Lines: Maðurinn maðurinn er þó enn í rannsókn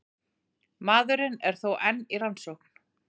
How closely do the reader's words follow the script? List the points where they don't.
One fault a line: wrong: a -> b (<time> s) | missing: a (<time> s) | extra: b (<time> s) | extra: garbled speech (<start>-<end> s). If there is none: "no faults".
missing: maðurinn (1.4 s)